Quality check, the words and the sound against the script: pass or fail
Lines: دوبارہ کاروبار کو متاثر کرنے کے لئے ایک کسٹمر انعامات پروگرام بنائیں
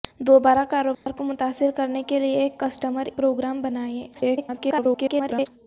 fail